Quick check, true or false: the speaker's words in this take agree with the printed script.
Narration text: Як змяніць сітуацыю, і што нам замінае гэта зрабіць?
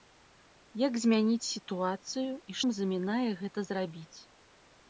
false